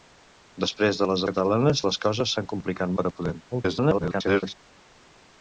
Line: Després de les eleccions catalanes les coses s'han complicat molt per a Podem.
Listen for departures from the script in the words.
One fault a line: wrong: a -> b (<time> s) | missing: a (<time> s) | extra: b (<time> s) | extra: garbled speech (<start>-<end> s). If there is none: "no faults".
missing: eleccions (1.2 s)
missing: molt (3.0 s)
extra: garbled speech (3.5-4.5 s)